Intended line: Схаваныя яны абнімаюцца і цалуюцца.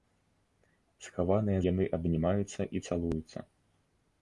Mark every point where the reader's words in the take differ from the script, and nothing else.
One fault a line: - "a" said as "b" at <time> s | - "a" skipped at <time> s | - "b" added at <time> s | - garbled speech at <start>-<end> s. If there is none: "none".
none